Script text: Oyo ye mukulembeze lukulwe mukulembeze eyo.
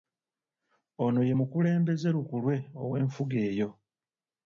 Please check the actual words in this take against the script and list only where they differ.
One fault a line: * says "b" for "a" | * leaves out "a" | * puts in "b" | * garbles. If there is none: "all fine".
* says "Ono" for "Oyo"
* says "ow'enfuga" for "mukulembeze"